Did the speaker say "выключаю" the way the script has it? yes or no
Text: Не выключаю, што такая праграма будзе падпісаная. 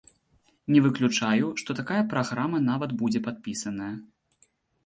yes